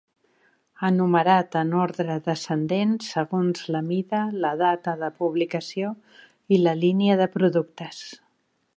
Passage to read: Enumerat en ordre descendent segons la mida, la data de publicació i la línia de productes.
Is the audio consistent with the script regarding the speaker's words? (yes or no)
yes